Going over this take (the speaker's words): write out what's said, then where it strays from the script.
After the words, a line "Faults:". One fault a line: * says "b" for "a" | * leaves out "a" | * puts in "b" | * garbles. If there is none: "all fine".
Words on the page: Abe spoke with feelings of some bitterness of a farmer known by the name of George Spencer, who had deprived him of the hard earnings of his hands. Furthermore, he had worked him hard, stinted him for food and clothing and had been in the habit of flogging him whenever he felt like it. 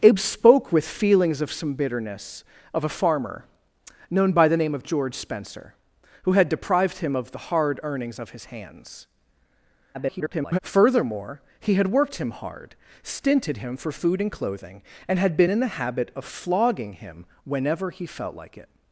Abe spoke with feelings of some bitterness of a farmer known by the name of George Spencer, who had deprived him of the hard earnings of his hands. [garbled] Furthermore, he had worked him hard, stinted him for food and clothing and had been in the habit of flogging him whenever he felt like it.
Faults:
* garbles